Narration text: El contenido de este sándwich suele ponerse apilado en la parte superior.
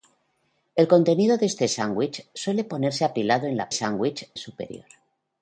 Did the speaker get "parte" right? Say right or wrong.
wrong